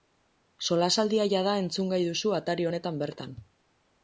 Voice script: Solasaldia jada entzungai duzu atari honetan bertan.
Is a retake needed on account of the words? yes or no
no